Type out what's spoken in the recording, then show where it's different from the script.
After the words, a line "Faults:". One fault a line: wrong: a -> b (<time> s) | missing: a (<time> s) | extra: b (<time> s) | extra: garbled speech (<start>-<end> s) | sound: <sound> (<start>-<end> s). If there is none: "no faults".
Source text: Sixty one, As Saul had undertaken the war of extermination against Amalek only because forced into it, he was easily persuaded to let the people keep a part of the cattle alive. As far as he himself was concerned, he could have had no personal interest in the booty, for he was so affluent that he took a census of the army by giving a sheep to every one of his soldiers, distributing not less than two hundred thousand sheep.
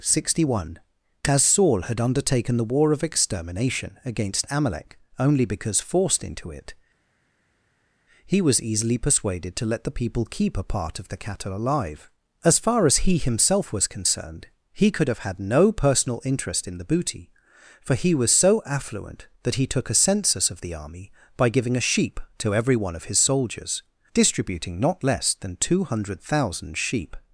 Sixty one, As Saul had undertaken the war of extermination against Amalek only because forced into it, he was easily persuaded to let the people keep a part of the cattle alive. As far as he himself was concerned, he could have had no personal interest in the booty, for he was so affluent that he took a census of the army by giving a sheep to every one of his soldiers, distributing not less than two hundred thousand sheep.
Faults:
no faults